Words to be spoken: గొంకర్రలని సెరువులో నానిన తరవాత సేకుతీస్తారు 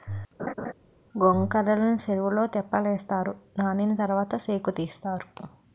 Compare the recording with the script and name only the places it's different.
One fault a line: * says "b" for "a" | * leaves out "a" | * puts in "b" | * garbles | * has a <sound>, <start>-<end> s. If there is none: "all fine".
* has a laugh, 0.4-0.7 s
* puts in "తెప్పలేస్తారు"